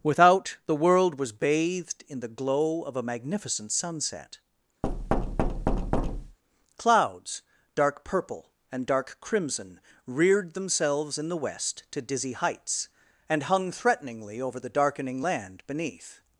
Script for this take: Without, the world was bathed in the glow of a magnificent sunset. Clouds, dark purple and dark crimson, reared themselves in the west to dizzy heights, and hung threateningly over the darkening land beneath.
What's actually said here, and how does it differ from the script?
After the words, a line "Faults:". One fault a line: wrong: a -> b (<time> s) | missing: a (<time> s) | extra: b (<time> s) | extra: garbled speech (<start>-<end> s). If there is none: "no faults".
Without, the world was bathed in the glow of a magnificent sunset. Clouds, dark purple and dark crimson, reared themselves in the west to dizzy heights, and hung threateningly over the darkening land beneath.
Faults:
no faults